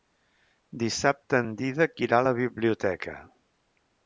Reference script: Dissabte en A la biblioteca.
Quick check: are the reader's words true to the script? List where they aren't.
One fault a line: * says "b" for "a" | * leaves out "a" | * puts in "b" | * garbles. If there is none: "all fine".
* puts in "Dídac irà"